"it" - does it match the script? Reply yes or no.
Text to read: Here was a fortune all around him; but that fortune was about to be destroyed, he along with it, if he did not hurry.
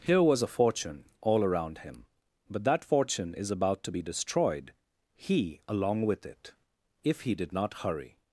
yes